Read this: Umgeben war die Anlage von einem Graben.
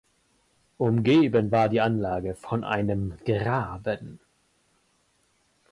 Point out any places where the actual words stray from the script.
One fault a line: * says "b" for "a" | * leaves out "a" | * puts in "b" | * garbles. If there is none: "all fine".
all fine